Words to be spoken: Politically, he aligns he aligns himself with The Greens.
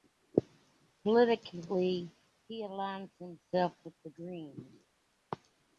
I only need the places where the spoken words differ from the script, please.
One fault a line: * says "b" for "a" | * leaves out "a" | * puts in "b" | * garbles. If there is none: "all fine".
* leaves out "he aligns"